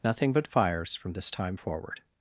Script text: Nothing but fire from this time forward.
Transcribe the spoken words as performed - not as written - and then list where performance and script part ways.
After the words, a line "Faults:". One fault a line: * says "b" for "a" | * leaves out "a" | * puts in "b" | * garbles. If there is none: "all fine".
Nothing but fires from this time forward.
Faults:
* says "fires" for "fire"